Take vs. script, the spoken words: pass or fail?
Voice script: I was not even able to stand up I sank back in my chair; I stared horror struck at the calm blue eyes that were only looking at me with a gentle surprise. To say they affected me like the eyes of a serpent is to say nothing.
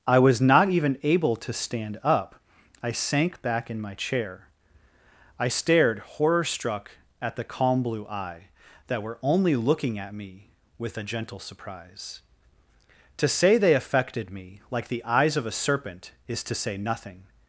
fail